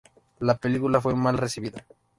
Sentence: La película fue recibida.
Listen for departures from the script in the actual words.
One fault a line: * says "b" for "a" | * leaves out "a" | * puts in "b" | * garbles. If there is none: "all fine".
* puts in "mal"